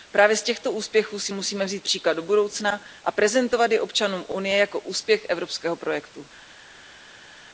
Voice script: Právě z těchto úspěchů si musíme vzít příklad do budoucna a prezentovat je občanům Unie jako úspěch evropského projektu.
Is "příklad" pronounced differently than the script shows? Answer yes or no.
no